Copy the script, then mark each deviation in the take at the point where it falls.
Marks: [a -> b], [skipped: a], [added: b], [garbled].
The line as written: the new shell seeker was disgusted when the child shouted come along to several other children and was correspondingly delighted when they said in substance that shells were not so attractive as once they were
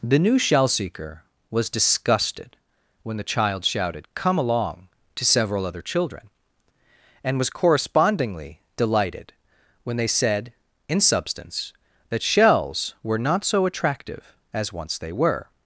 the new shell seeker was disgusted when the child shouted come along to several other children and was correspondingly delighted when they said in substance that shells were not so attractive as once they were